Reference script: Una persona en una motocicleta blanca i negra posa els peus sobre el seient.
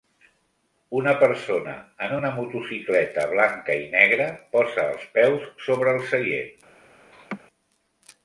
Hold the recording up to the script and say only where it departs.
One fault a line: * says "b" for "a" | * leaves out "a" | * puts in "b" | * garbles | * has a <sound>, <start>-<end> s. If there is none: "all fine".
* has a laugh, 7.1-7.4 s